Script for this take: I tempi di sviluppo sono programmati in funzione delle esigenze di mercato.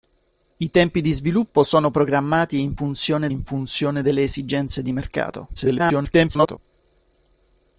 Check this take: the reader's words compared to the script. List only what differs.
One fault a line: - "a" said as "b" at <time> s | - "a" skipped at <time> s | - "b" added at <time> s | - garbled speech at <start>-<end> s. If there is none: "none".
- "in funzione" added at 3.3 s
- garbled speech at 5.5-6.6 s